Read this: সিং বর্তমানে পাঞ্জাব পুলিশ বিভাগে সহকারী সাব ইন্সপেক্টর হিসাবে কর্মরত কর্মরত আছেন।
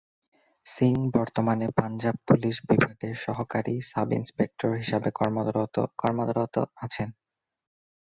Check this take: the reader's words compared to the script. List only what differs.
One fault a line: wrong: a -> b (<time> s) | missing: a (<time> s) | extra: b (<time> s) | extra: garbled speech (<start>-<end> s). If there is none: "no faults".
no faults